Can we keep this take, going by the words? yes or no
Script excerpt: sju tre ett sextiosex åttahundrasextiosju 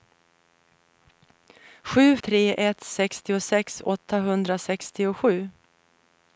yes